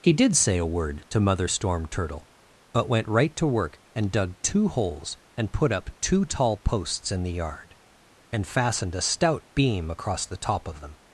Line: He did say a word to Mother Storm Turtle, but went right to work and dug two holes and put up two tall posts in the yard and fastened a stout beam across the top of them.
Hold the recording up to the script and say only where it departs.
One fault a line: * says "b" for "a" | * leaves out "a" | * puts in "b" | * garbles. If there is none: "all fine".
all fine